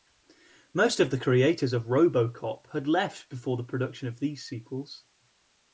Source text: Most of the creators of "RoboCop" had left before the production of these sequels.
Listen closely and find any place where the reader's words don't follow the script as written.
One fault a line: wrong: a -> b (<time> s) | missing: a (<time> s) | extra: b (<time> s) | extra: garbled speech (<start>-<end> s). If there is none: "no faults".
no faults